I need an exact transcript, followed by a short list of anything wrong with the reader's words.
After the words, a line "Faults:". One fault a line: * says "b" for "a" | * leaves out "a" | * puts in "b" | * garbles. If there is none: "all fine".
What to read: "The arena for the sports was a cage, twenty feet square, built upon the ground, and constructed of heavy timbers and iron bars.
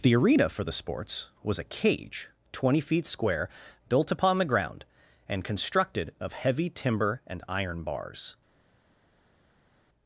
"The arena for the sports was a cage, twenty feet square, built upon the ground, and constructed of heavy timber and iron bars.
Faults:
* says "timber" for "timbers"